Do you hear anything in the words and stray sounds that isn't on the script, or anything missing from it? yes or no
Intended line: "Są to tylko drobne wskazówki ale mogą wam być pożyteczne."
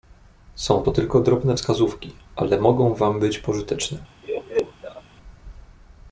yes